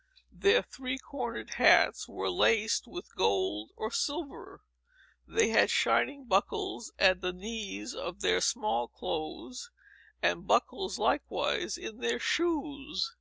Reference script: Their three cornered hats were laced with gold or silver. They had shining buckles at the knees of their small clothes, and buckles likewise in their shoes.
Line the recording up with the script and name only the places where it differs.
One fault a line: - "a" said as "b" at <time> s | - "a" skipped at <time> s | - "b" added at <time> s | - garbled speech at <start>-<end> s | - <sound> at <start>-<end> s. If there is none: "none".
none